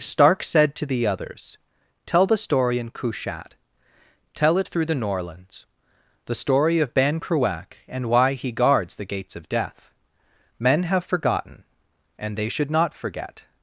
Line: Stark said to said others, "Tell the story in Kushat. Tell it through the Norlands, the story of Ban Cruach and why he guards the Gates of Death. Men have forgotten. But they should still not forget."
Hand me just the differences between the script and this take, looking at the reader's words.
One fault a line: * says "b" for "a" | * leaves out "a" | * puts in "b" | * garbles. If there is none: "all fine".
* says "the" for "said"
* says "And" for "But"
* leaves out "still"